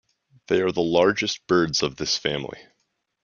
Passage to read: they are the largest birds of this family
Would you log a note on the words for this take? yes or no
no